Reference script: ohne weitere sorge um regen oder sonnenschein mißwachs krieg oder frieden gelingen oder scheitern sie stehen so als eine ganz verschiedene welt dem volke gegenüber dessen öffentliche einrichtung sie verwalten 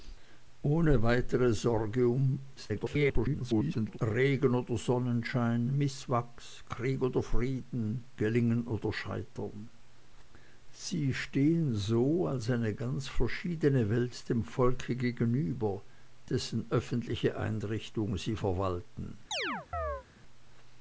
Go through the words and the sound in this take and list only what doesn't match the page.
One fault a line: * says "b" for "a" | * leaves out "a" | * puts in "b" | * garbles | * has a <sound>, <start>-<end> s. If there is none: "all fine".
* garbles
* has a chirp, 19.3-20.0 s